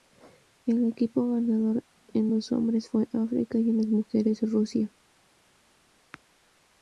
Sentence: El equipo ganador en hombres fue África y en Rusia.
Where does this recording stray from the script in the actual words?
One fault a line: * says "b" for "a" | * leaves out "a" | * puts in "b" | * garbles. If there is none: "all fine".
* puts in "los"
* puts in "las mujeres"